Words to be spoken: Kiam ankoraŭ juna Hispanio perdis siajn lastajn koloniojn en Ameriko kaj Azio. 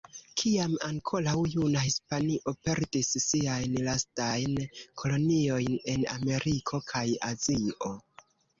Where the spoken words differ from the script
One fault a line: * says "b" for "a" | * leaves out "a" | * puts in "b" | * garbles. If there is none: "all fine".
all fine